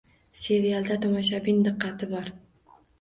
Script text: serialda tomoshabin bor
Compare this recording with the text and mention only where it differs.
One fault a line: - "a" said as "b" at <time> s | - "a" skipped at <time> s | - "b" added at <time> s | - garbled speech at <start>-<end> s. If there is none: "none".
- "diqqati" added at 1.7 s